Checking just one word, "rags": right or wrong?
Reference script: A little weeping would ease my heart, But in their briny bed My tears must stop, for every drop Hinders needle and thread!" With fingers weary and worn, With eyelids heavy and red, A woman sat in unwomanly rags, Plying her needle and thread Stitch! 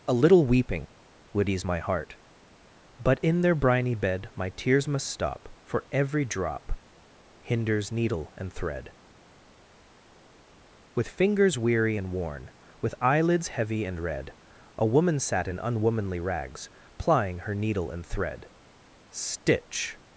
right